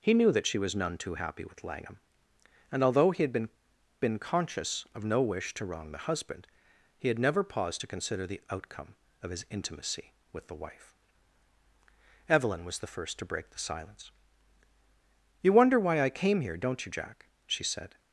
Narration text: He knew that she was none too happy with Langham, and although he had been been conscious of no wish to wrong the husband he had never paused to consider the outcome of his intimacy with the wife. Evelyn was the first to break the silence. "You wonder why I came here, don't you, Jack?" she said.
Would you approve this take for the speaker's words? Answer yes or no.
yes